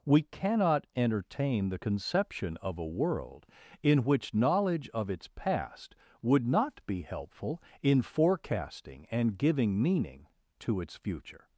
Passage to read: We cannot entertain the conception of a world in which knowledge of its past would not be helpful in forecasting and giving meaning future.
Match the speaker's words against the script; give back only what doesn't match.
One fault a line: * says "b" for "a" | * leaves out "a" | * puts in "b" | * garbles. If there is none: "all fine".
* puts in "to its"